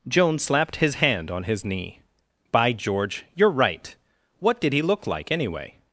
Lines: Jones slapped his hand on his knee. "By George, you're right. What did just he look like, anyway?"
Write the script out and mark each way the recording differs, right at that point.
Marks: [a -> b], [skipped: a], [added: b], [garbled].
Jones slapped his hand on his knee. "By George, you're right. What did [skipped: just] he look like, anyway?"